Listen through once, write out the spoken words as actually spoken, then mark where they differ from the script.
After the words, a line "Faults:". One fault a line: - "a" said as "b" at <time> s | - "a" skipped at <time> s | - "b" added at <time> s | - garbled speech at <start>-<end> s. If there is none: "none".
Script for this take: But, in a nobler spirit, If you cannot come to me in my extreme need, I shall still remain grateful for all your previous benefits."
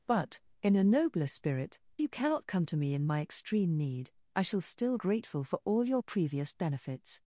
But, in a nobler spirit, You cannot come to me in my extreme need, I shall still grateful for all your previous benefits."
Faults:
- "If" skipped at 1.8 s
- "remain" skipped at 5.0 s